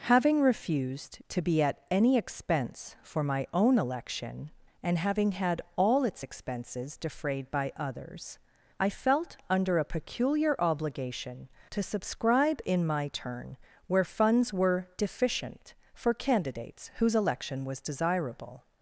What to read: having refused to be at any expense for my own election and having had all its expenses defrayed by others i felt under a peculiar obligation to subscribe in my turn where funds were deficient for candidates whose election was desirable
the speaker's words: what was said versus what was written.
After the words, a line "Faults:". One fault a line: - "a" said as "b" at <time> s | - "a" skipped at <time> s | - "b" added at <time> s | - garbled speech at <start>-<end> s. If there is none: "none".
having refused to be at any expense for my own election and having had all its expenses defrayed by others i felt under a peculiar obligation to subscribe in my turn where funds were deficient for candidates whose election was desirable
Faults:
none